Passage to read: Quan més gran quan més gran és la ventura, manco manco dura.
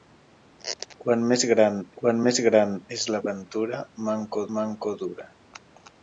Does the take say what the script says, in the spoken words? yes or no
yes